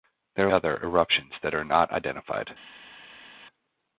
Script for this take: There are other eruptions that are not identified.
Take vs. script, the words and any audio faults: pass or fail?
pass